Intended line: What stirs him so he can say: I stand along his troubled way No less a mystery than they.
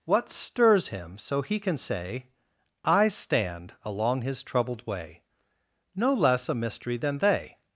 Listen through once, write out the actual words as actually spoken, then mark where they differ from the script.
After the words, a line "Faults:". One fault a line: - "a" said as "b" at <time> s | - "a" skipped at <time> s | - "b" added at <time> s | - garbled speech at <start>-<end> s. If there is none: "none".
What stirs him so he can say: I stand along his troubled way No less a mystery than they.
Faults:
none